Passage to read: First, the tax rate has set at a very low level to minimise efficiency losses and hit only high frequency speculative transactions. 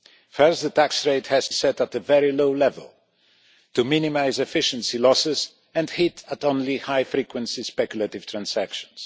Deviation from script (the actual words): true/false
false